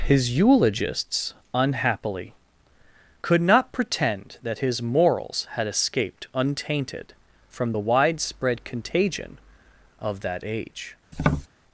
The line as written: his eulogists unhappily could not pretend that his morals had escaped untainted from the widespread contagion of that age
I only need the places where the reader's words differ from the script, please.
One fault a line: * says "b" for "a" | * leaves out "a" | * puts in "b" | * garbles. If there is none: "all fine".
all fine